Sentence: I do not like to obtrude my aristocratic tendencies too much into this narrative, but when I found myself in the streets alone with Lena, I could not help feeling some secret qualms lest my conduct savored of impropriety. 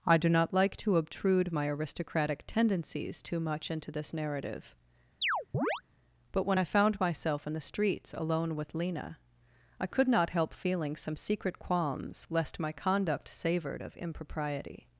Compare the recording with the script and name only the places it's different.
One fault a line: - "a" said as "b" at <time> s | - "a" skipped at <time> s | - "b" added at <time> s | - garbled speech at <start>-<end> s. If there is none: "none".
none